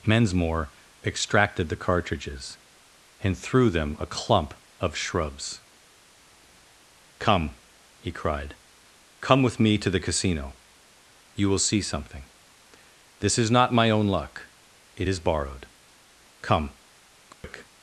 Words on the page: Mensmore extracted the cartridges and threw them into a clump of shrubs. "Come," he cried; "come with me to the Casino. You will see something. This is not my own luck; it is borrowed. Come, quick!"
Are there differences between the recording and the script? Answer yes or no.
yes